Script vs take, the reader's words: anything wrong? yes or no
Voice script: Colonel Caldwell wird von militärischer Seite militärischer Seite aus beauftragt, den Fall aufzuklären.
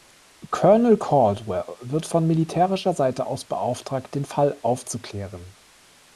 yes